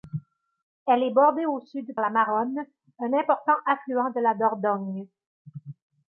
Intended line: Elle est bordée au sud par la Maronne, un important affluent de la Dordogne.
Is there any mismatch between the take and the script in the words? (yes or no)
yes